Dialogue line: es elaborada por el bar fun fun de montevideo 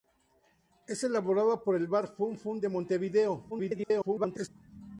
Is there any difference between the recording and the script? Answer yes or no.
yes